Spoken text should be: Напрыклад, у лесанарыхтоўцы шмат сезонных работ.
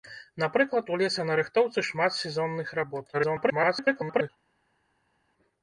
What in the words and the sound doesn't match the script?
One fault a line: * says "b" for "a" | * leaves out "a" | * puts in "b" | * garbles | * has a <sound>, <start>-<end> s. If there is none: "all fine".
* garbles